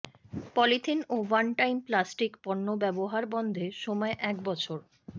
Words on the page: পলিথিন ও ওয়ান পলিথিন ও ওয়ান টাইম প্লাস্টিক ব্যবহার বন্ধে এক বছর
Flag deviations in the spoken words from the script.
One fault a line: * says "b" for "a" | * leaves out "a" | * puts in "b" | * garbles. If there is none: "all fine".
* leaves out "পলিথিন ও ওয়ান"
* puts in "পণ্য"
* puts in "সময়"